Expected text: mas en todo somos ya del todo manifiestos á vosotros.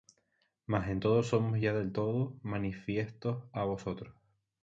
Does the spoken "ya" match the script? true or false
true